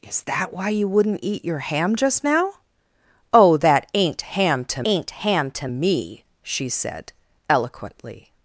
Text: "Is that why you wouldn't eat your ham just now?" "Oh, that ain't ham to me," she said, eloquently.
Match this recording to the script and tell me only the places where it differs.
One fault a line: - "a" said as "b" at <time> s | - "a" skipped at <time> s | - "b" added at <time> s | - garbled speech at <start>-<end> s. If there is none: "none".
- "ain't ham to" added at 4.8 s